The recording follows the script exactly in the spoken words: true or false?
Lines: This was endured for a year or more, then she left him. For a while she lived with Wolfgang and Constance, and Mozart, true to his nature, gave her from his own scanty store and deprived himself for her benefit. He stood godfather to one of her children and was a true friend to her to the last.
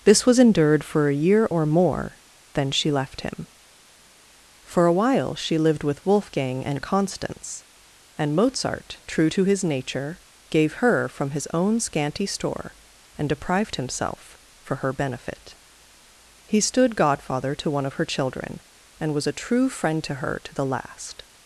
true